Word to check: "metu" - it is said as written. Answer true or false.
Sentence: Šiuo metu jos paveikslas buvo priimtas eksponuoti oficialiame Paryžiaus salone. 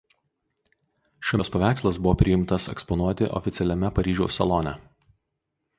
false